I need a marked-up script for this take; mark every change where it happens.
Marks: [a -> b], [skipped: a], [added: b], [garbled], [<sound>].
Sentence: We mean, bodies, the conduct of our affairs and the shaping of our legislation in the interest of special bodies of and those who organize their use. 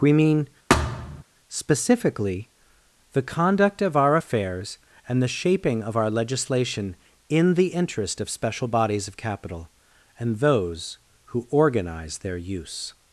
We mean, [thud] [bodies, -> specifically] the conduct of our affairs and the shaping of our legislation in the interest of special bodies of [added: capital] and those who organize their use.